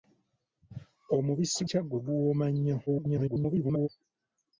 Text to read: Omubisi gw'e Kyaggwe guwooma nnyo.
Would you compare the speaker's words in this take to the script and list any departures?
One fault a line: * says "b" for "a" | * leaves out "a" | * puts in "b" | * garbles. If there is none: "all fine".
* leaves out "gw'e"
* garbles